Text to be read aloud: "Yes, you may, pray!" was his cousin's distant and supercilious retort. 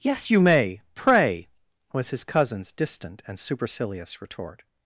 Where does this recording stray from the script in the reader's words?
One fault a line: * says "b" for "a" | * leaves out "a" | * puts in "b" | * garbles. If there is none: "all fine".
all fine